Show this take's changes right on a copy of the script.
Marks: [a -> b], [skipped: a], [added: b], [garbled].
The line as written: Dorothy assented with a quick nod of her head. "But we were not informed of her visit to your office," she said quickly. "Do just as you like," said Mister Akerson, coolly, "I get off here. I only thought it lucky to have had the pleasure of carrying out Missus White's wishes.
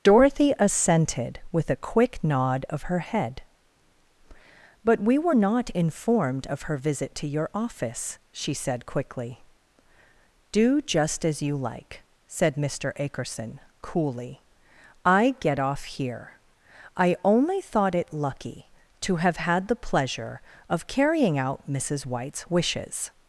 Dorothy assented with a quick nod of her head. "But we were not informed of her visit to your office," she said quickly. "Do just as you like," said Mister Akerson, coolly, "I get off here. I only thought it lucky to have had the pleasure of carrying out Missus White's wishes.